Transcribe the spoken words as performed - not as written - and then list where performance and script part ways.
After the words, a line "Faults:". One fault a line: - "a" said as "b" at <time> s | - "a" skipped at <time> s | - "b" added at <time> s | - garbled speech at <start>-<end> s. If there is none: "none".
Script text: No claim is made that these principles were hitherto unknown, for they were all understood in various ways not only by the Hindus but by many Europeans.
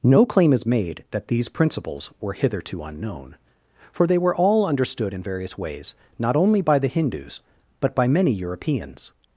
No claim is made that these principles were hitherto unknown, for they were all understood in various ways not only by the Hindus but by many Europeans.
Faults:
none